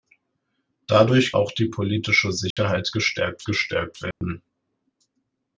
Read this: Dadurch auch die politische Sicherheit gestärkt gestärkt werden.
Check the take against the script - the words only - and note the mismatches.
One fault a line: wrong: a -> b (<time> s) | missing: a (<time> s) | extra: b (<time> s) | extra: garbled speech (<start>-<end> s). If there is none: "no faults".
no faults